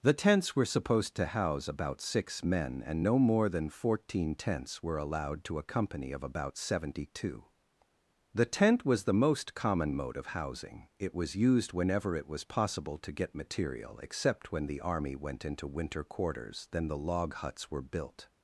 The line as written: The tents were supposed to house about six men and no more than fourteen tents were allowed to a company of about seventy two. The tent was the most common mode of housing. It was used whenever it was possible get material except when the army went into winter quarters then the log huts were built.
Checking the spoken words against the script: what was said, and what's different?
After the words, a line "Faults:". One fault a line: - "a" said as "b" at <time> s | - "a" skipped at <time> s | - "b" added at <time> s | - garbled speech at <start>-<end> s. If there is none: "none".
The tents were supposed to house about six men and no more than fourteen tents were allowed to a company of about seventy two. The tent was the most common mode of housing. It was used whenever it was possible to get material except when the army went into winter quarters then the log huts were built.
Faults:
- "to" added at 13.0 s